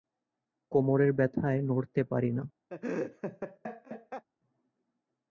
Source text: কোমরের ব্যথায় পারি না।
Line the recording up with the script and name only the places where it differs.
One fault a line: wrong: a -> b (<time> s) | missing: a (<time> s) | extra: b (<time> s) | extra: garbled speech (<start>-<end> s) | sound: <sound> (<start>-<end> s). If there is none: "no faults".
extra: নড়তে (1.6 s)
sound: laugh (2.7-4.2 s)